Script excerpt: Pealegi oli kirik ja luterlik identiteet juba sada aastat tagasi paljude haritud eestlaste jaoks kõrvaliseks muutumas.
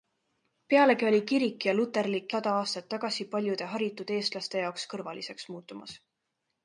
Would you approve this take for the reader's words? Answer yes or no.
no